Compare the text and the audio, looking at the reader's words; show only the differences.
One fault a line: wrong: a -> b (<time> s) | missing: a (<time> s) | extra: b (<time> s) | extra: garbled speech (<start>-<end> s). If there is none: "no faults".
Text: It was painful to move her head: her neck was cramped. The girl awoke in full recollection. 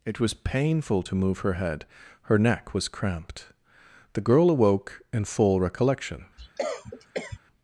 no faults